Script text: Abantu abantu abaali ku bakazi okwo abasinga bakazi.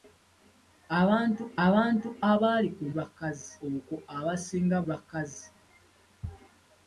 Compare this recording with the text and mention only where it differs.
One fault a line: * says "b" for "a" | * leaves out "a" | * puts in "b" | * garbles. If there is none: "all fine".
all fine